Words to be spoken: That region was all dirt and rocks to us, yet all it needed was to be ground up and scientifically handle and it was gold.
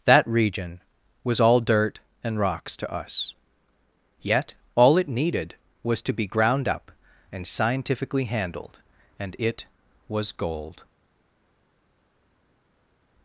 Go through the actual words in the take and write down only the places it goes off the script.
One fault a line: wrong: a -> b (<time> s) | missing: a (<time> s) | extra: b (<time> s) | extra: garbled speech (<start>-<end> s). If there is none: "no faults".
wrong: handle -> handled (8.2 s)